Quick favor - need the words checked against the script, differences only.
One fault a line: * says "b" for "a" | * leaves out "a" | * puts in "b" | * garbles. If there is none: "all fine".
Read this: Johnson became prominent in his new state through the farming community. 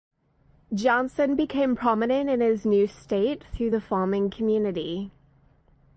all fine